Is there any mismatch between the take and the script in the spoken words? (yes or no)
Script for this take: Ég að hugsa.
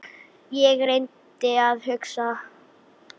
yes